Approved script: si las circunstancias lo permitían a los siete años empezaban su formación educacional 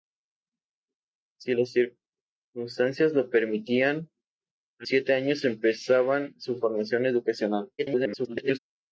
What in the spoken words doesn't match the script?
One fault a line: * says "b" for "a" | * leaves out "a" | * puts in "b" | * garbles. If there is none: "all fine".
* leaves out "los"
* garbles